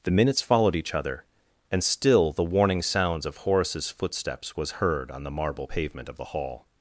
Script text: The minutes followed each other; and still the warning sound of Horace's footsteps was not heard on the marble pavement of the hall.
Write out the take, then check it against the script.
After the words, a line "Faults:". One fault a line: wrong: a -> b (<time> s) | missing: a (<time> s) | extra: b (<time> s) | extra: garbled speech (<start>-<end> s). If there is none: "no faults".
The minutes followed each other; and still the warning sounds of Horace's footsteps was heard on the marble pavement of the hall.
Faults:
wrong: sound -> sounds (2.8 s)
missing: not (4.7 s)